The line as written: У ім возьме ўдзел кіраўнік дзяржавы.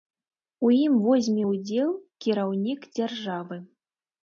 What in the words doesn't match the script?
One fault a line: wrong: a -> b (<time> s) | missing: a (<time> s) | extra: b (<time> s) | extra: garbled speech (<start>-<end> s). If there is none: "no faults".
no faults